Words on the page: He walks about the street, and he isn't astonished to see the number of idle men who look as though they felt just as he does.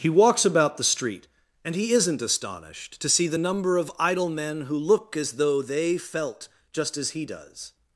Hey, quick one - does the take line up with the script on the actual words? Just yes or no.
yes